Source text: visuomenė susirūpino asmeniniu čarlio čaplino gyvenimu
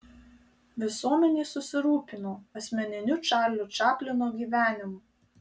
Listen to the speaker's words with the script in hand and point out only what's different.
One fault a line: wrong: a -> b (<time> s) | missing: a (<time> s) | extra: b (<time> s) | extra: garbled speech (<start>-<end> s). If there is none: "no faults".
no faults